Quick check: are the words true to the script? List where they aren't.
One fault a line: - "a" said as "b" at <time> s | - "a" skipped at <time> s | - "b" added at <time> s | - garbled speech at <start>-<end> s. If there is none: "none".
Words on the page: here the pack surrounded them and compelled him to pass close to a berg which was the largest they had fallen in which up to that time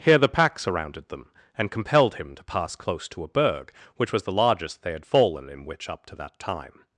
none